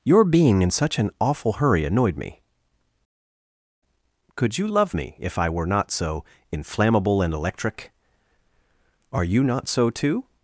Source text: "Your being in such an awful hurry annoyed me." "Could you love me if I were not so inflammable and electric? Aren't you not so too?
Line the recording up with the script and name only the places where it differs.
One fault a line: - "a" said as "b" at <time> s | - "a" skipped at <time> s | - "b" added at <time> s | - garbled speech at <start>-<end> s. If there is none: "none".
- "Aren't" said as "Are" at 9.1 s